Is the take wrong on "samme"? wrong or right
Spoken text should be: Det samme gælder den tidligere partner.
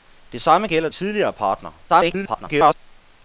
right